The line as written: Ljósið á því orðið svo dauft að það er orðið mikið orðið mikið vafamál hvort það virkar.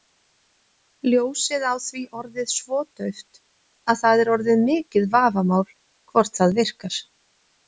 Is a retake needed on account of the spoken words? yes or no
yes